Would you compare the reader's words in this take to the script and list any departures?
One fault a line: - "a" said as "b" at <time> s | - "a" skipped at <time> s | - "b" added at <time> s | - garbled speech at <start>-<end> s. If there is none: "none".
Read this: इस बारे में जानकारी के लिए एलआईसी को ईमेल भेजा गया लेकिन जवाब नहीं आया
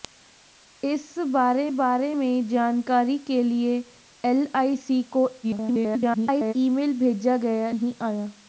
- "बारे" added at 1.8 s
- garbled speech at 5.4-6.5 s
- "लेकिन जवाब" skipped at 7.7 s